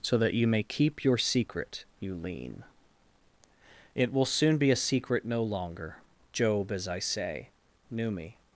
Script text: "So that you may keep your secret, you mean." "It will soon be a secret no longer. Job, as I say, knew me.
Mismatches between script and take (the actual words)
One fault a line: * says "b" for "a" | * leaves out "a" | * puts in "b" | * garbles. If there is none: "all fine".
* says "lean" for "mean"